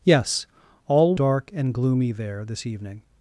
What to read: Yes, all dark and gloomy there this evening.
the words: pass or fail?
pass